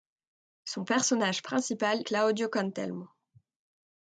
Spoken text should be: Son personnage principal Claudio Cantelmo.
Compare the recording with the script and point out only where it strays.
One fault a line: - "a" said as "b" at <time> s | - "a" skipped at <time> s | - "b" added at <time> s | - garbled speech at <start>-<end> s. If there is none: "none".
none